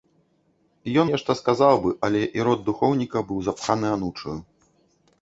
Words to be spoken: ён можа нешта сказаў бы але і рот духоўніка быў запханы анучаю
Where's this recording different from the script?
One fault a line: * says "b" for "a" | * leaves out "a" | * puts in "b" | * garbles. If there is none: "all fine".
* leaves out "можа"